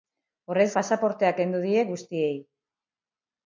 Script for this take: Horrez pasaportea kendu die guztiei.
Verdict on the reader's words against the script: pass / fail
pass